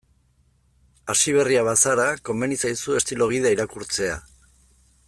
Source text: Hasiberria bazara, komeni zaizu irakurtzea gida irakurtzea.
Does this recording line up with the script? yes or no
no